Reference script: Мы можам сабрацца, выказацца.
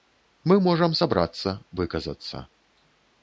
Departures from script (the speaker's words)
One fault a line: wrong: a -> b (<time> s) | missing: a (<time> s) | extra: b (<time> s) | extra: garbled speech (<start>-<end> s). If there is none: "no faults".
no faults